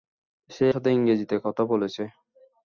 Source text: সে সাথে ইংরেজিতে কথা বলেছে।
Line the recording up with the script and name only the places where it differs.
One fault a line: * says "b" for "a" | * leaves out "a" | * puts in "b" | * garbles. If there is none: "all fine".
all fine